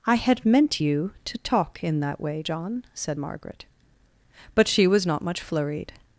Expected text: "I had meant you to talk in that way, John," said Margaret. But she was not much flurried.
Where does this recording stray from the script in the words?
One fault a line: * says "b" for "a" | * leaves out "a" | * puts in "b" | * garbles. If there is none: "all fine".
all fine